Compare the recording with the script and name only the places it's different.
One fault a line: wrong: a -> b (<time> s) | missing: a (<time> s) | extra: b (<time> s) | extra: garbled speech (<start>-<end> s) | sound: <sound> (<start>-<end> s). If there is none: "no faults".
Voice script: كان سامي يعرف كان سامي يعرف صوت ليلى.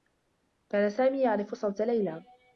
missing: كان سامي يعرف (1.6 s)